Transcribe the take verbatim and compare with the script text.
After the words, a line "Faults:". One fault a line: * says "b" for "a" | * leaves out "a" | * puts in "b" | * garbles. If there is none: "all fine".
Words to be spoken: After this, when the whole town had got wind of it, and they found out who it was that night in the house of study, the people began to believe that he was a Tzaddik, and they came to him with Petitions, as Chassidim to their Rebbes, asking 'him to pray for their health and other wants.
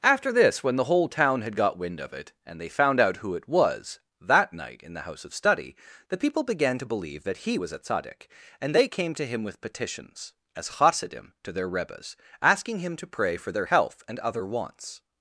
After this, when the whole town had got wind of it, and they found out who it was that night in the house of study, the people began to believe that he was a Tzaddik, and they came to him with Petitions, as Chassidim to their Rebbes, asking 'him to pray for their health and other wants.
Faults:
all fine